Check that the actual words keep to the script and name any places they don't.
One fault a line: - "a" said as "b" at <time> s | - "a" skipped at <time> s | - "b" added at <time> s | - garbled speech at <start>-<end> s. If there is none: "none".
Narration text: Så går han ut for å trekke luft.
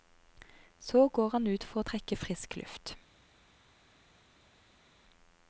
- "frisk" added at 2.2 s